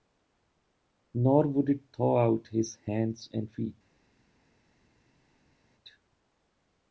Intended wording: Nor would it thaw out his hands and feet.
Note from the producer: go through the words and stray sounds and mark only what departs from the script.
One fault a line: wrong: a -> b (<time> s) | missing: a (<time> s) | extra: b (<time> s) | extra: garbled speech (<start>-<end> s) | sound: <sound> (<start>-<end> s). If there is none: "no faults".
no faults